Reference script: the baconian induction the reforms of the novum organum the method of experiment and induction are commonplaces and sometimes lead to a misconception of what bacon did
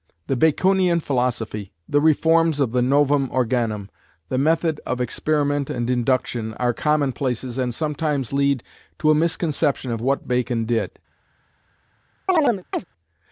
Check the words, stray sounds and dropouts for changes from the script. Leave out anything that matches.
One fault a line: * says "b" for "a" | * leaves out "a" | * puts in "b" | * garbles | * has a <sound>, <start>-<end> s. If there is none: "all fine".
* says "philosophy" for "induction"
* has a chirp, 12.3-12.8 s